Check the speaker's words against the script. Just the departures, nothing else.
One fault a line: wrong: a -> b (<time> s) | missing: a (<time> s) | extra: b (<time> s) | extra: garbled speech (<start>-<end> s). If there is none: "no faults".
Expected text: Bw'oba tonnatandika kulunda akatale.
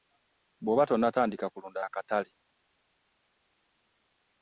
no faults